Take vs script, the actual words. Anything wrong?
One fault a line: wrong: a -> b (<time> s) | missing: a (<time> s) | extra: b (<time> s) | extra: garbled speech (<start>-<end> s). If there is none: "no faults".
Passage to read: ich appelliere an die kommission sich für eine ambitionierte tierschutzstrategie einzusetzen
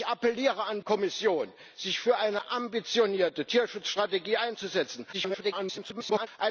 missing: die (0.8 s)
extra: garbled speech (5.1-6.3 s)